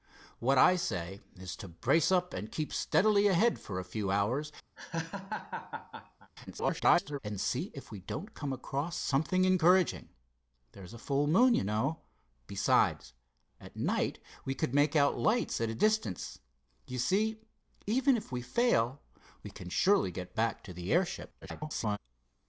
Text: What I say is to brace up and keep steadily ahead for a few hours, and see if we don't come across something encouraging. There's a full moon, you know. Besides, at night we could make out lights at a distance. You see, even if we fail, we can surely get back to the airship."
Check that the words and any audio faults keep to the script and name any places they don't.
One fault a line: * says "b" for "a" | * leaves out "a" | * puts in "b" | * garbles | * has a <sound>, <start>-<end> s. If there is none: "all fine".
* has a laugh, 4.8-6.3 s
* garbles
* garbles